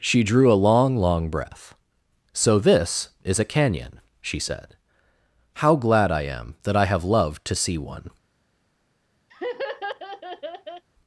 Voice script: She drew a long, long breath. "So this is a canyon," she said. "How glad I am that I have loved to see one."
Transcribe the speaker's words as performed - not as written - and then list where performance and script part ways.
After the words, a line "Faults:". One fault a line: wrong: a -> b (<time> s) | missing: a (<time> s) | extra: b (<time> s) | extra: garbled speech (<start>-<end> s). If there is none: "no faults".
She drew a long, long breath. "So this is a canyon," she said. "How glad I am that I have loved to see one."
Faults:
no faults